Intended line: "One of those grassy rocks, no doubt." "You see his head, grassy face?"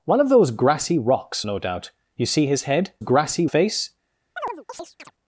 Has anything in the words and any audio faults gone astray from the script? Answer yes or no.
yes